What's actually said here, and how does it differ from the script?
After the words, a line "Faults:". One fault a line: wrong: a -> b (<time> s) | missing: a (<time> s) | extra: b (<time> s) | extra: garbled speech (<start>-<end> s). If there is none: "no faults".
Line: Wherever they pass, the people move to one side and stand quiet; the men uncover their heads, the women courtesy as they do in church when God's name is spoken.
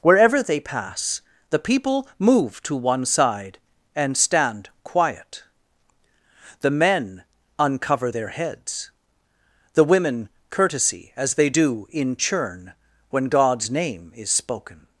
Wherever they pass, the people move to one side and stand quiet; the men uncover their heads, the women courtesy as they do in churn when God's name is spoken.
Faults:
wrong: church -> churn (12.2 s)